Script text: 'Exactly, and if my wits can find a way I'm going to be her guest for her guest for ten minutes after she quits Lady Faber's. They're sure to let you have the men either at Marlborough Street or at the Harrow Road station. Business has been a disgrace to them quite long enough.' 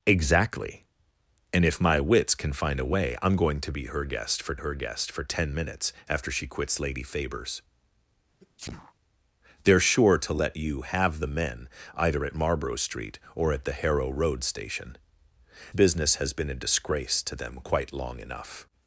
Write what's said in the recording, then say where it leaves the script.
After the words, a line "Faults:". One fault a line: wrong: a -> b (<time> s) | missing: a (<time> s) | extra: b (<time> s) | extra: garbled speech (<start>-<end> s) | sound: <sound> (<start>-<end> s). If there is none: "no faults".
'Exactly, and if my wits can find a way I'm going to be her guest for her guest for ten minutes after she quits Lady Faber's. They're sure to let you have the men either at Marlborough Street or at the Harrow Road station. Business has been a disgrace to them quite long enough.'
Faults:
sound: sneeze (8.4-8.9 s)